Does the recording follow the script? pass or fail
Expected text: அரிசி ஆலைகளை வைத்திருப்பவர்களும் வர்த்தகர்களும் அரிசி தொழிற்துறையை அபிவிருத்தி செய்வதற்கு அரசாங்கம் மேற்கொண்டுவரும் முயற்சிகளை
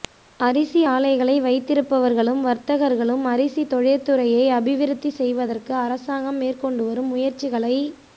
pass